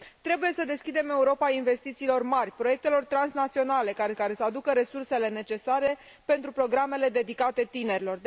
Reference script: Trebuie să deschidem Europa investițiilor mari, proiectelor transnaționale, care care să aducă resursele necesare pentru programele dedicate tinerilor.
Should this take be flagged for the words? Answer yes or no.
no